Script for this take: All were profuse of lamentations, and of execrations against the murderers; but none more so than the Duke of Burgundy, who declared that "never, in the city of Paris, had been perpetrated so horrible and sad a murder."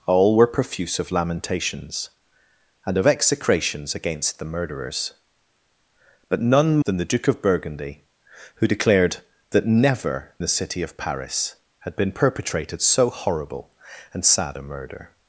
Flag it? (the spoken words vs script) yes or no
yes